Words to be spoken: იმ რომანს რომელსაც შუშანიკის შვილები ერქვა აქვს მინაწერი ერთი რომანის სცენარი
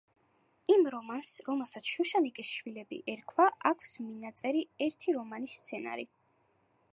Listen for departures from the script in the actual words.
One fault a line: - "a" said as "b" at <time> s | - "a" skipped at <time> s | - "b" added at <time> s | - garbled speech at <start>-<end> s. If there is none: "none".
none